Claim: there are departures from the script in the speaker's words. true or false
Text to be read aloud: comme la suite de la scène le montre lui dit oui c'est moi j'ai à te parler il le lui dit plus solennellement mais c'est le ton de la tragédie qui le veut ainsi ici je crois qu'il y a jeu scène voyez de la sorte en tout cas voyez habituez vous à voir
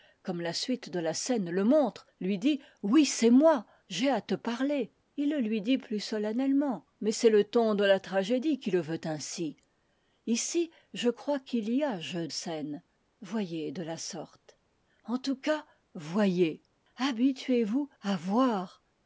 false